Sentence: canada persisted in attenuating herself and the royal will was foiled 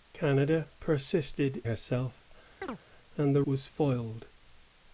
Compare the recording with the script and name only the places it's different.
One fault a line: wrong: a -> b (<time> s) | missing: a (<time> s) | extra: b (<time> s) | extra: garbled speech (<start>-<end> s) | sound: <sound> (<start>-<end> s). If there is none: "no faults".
missing: in attenuating (1.6 s)
sound: chirp (2.6-2.8 s)
missing: royal will (3.4 s)